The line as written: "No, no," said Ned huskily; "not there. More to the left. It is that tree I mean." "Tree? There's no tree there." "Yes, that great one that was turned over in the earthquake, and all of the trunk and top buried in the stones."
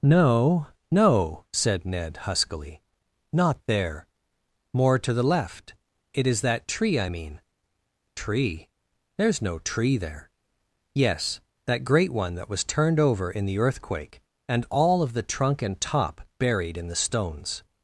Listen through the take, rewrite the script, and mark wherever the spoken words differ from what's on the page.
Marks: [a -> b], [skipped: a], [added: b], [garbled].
"No, no," said Ned huskily; "not there. More to the left. It is that tree I mean." "Tree? There's no tree there." "Yes, that great one that was turned over in the earthquake, and all of the trunk and top buried in the stones."